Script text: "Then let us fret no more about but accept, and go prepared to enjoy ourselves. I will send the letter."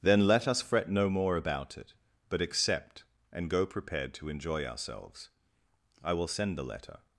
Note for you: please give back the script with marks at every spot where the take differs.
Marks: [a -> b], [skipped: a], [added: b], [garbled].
"Then let us fret no more about [added: it] but accept, and go prepared to enjoy ourselves. I will send the letter."